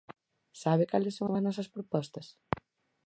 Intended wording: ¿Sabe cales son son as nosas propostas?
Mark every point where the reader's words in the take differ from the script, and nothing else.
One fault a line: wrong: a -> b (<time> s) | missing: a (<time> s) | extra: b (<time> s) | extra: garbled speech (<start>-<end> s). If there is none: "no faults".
no faults